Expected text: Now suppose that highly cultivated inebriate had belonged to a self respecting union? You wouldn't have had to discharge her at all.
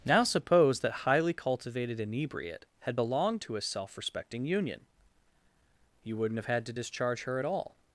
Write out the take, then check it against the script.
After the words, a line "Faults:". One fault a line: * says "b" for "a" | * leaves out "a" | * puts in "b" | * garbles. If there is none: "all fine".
Now suppose that highly cultivated inebriate had belonged to a self respecting union? You wouldn't have had to discharge her at all.
Faults:
all fine